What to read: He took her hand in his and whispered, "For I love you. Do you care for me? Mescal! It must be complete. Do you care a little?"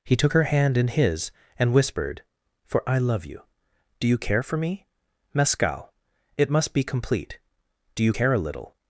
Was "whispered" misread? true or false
false